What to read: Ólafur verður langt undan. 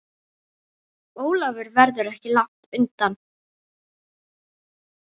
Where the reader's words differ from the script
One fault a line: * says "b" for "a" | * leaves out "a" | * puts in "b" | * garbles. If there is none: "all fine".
* puts in "ekki"